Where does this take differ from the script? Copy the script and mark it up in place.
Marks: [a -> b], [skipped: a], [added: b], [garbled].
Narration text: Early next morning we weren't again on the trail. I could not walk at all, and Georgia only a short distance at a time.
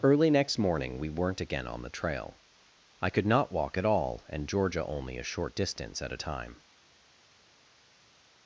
Early next morning we weren't again on the trail. I could not walk at all, and Georgia only a short distance at a time.